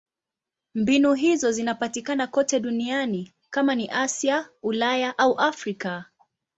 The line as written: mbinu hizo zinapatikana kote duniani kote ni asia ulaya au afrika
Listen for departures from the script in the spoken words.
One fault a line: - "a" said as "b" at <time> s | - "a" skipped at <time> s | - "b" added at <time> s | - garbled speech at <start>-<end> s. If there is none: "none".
- "kote" said as "kama" at 3.5 s